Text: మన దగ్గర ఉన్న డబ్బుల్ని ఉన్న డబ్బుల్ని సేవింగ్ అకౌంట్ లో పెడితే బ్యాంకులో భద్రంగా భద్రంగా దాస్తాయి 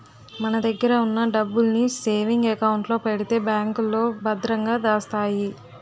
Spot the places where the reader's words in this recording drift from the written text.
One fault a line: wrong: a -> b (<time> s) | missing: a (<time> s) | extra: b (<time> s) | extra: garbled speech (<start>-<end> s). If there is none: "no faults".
missing: ఉన్న డబ్బుల్ని (1.8 s)
missing: భద్రంగా (4.8 s)